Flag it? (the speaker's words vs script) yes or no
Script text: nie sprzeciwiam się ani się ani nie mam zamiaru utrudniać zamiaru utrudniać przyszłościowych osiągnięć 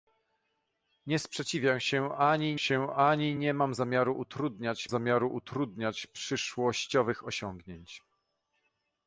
no